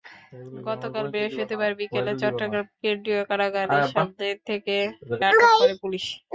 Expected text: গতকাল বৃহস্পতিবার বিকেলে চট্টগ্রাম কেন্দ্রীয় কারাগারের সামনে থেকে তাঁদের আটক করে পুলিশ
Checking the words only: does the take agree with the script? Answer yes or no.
no